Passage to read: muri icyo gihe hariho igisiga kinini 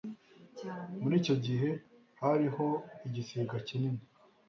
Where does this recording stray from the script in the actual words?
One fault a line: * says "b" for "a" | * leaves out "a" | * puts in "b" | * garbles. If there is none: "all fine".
all fine